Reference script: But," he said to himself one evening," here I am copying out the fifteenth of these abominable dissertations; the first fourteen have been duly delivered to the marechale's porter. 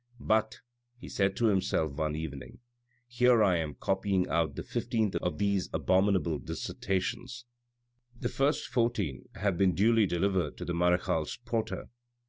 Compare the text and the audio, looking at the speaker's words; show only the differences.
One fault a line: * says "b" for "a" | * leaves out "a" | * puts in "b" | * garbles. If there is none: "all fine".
all fine